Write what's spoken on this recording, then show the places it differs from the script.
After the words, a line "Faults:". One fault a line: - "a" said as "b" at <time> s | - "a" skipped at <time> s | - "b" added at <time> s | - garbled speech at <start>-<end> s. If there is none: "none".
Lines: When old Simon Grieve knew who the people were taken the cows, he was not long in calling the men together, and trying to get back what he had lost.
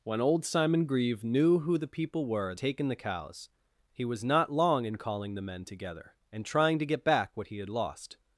When old Simon Grieve knew who the people were taken the cows, he was not long in calling the men together, and trying to get back what he had lost.
Faults:
none